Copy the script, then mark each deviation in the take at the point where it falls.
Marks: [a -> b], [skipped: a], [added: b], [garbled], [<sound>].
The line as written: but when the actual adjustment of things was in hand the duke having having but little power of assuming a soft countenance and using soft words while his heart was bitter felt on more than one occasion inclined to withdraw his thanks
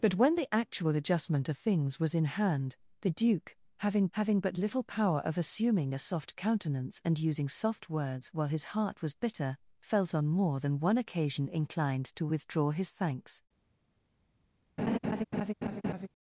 but when the actual adjustment of things was in hand the duke having having but little power of assuming a soft countenance and using soft words while his heart was bitter felt on more than one occasion inclined to withdraw his thanks [laugh]